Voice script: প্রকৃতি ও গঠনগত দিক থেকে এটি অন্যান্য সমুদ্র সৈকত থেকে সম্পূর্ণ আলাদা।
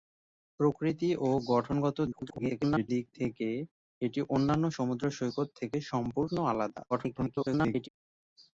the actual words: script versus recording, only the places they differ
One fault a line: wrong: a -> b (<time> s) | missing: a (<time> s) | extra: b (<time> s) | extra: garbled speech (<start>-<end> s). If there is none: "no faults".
extra: garbled speech (2.1-2.9 s)
extra: garbled speech (6.9-7.9 s)